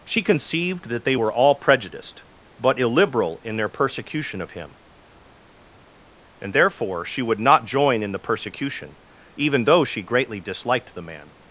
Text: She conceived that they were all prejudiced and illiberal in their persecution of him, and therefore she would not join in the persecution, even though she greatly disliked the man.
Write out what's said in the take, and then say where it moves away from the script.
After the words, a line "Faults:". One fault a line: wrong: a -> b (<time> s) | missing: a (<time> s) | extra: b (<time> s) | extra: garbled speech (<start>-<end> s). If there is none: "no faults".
She conceived that they were all prejudiced but illiberal in their persecution of him, and therefore she would not join in the persecution, even though she greatly disliked the man.
Faults:
wrong: and -> but (2.6 s)